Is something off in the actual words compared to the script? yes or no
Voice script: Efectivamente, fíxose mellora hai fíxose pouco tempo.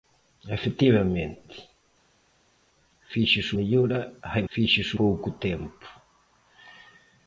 no